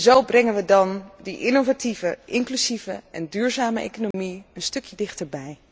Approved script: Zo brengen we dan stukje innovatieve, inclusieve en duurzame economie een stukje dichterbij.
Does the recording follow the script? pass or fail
fail